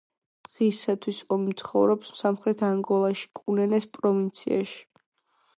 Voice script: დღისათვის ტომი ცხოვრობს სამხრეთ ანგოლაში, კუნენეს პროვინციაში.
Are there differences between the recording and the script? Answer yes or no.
no